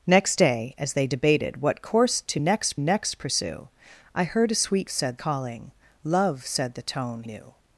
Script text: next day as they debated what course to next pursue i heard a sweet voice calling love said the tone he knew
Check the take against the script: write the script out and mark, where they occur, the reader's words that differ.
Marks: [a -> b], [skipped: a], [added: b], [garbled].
next day as they debated what course to next [added: next] pursue i heard a sweet [voice -> said] calling love said the tone [skipped: he] knew